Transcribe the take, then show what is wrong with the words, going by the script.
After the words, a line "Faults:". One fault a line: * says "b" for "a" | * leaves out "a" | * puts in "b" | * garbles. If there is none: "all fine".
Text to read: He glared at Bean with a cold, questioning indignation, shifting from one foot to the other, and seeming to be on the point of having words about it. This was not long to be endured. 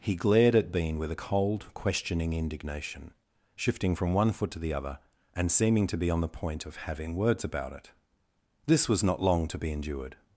He glared at Bean with a cold, questioning indignation, shifting from one foot to the other, and seeming to be on the point of having words about it. This was not long to be endured.
Faults:
all fine